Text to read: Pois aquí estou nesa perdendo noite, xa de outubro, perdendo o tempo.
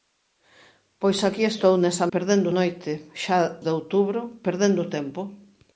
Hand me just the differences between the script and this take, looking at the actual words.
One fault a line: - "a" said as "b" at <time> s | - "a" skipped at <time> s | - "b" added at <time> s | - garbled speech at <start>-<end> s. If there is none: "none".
none